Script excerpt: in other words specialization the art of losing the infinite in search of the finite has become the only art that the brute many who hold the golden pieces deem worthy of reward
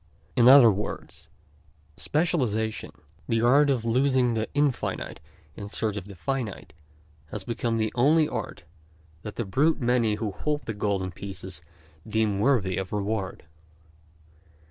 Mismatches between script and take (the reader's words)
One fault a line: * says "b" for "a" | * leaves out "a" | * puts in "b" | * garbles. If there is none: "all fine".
all fine